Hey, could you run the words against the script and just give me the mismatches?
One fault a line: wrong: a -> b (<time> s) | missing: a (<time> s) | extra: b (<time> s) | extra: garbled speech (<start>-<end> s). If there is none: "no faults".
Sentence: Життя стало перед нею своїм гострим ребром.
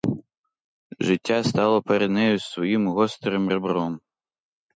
no faults